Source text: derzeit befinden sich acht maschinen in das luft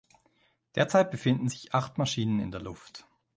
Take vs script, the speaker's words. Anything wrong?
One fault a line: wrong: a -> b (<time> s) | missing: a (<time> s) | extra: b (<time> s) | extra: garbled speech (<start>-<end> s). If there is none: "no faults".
wrong: das -> der (2.5 s)